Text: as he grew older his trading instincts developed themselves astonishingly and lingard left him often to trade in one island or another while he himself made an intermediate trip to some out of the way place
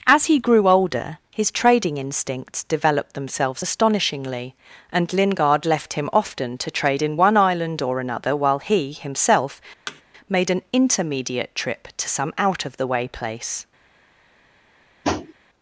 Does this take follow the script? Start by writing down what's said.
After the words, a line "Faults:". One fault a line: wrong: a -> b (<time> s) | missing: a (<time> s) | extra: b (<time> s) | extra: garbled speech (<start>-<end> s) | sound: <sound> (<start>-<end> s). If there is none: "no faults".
as he grew older his trading instincts developed themselves astonishingly and lingard left him often to trade in one island or another while he himself made an intermediate trip to some out of the way place
Faults:
sound: thud (9.9-10.0 s)
sound: tap (15.0-15.3 s)